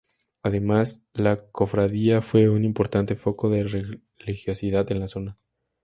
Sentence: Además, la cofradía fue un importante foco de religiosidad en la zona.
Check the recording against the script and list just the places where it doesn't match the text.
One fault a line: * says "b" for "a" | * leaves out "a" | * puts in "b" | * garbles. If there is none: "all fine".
all fine